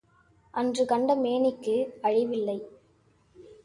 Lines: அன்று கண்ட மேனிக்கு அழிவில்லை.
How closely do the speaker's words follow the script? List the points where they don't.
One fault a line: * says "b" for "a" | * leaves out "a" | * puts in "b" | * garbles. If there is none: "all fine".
all fine